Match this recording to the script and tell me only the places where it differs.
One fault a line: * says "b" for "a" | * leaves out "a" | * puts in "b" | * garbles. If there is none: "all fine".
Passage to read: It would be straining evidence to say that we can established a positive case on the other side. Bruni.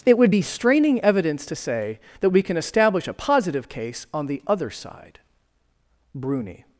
* says "establish" for "established"